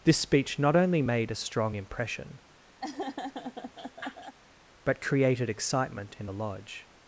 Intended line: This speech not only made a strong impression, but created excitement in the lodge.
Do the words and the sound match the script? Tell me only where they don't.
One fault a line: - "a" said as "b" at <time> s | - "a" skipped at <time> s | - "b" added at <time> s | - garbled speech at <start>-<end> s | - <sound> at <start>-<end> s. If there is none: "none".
- laugh at 2.8-4.4 s